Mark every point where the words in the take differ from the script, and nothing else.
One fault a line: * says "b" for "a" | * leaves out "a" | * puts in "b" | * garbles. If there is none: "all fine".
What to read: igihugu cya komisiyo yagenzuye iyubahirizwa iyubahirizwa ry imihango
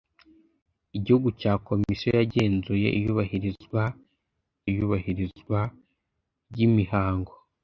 all fine